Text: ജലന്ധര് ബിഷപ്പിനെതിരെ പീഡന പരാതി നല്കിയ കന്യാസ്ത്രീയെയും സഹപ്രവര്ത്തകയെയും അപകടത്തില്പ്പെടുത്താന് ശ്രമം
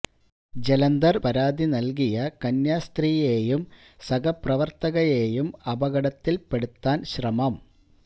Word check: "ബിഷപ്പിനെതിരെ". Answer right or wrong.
wrong